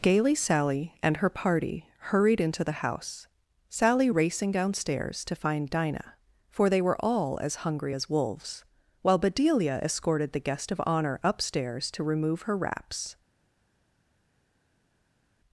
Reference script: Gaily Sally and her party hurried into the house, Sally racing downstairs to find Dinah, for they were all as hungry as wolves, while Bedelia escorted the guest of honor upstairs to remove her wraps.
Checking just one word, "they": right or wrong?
right